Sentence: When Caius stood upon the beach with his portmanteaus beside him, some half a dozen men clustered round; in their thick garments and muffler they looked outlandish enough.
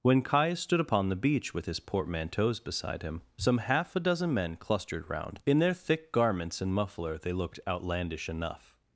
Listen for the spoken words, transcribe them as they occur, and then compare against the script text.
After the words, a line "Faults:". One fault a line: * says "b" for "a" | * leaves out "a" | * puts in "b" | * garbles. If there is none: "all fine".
When Caius stood upon the beach with his portmanteaus beside him, some half a dozen men clustered round; in their thick garments and muffler they looked outlandish enough.
Faults:
all fine